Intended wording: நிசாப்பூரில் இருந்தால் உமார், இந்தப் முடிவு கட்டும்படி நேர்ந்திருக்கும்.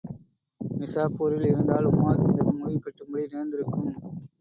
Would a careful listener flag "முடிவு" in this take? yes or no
no